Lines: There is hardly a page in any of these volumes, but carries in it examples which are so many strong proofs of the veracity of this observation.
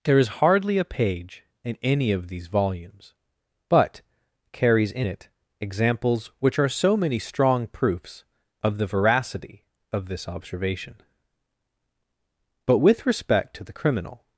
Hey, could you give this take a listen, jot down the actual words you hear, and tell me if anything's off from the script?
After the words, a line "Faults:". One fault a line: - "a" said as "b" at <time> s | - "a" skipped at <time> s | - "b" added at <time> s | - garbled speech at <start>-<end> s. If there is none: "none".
There is hardly a page in any of these volumes, but carries in it examples which are so many strong proofs of the veracity of this observation. But with respect to the criminal
Faults:
- "But with respect to the criminal" added at 12.6 s